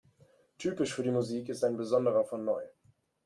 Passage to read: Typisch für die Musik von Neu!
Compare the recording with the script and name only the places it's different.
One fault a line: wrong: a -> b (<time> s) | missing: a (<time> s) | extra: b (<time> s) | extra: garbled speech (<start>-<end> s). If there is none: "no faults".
extra: ist ein besonderer (1.5 s)